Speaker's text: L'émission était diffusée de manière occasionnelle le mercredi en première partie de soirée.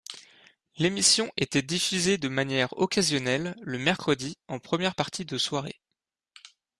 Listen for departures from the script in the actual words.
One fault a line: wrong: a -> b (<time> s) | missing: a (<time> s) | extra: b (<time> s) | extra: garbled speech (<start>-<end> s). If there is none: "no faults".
no faults